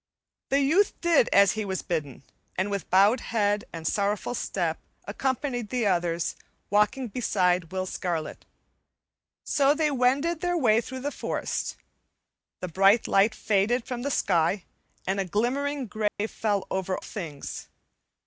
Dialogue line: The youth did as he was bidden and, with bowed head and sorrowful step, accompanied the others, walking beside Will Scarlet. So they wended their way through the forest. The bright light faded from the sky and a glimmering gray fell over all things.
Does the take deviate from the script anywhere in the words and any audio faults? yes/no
yes